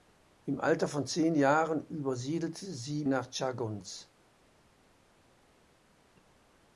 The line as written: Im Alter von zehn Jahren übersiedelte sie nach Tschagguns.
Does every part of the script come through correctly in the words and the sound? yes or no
yes